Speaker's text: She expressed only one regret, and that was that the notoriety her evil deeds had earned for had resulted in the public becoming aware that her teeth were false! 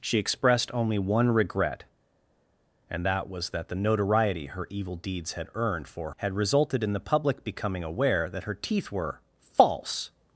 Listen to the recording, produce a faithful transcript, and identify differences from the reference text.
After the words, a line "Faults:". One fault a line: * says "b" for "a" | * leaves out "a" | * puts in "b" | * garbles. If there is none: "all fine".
She expressed only one regret, and that was that the notoriety her evil deeds had earned for had resulted in the public becoming aware that her teeth were false!
Faults:
all fine